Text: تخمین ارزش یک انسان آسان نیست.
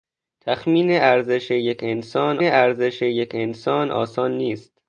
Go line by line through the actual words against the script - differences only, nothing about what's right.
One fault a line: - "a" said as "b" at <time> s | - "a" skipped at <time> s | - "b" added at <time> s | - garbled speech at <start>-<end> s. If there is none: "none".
- "ارزش یک انسان" added at 2.4 s